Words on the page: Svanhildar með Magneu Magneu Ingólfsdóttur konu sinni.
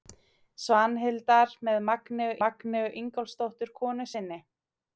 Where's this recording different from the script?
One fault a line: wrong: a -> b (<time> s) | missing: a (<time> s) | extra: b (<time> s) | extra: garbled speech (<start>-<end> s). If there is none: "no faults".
no faults